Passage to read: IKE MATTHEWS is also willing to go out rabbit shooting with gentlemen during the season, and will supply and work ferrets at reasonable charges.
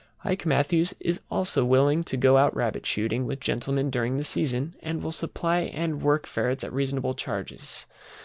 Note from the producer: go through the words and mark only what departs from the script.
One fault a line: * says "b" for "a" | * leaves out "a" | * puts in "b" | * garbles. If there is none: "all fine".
all fine